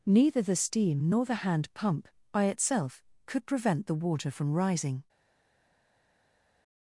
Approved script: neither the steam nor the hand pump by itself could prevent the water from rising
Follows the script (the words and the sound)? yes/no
yes